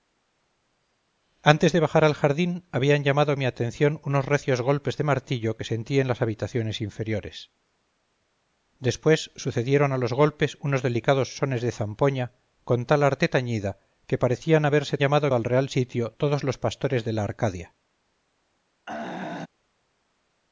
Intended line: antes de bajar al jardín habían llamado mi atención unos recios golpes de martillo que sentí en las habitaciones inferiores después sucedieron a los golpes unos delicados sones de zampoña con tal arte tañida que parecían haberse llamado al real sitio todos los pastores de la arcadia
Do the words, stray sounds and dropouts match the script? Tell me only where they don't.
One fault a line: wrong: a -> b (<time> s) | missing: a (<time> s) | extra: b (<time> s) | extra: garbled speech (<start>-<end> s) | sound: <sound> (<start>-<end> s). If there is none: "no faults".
sound: throat clearing (18.9-19.5 s)